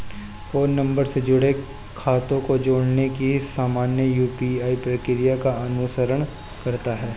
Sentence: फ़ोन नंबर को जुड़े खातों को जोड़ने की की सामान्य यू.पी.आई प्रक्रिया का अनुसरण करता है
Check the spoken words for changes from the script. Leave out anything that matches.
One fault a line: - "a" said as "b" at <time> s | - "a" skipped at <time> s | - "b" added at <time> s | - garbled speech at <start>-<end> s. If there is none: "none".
- "को" said as "से" at 1.1 s
- "की" skipped at 3.4 s